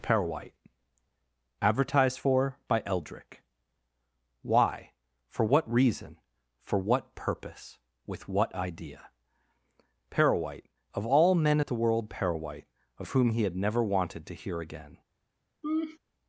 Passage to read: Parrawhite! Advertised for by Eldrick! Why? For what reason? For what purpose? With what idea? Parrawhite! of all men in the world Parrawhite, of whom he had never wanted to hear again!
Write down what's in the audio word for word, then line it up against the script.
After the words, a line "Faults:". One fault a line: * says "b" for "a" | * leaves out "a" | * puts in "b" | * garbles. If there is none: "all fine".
Parrawhite! Advertised for by Eldrick! Why? For what reason? For what purpose? With what idea? Parrawhite! of all men at the world Parrawhite, of whom he had never wanted to hear again!
Faults:
* says "at" for "in"